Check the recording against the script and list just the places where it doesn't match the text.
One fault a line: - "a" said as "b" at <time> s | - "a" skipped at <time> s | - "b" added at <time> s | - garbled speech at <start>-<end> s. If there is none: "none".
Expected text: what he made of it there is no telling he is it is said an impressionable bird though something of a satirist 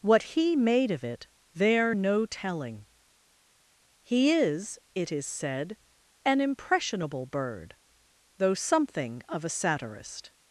- "is" skipped at 1.9 s